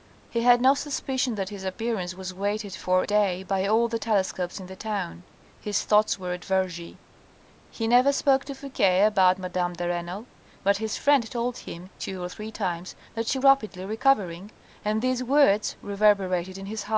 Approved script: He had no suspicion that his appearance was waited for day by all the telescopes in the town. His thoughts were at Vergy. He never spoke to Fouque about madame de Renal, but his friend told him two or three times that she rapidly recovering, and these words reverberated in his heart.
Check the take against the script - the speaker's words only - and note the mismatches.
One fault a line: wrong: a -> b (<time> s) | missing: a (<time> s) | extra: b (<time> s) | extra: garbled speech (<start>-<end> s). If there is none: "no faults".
no faults